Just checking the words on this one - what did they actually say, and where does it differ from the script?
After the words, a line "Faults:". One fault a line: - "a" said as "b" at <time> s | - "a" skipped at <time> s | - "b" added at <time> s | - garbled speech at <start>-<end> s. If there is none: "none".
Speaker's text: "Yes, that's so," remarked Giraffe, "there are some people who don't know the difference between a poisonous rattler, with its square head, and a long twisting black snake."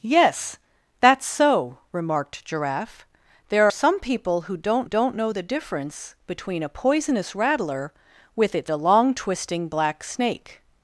"Yes, that's so," remarked Giraffe, "there some people who don't don't know the difference between a poisonous rattler, with its a long twisting black snake."
Faults:
- "are" skipped at 3.7 s
- "don't" added at 4.8 s
- "square head and" skipped at 8.7 s